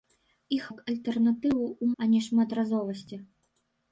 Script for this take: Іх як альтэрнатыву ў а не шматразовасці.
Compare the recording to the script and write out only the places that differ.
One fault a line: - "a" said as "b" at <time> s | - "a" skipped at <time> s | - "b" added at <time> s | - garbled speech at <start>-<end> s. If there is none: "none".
none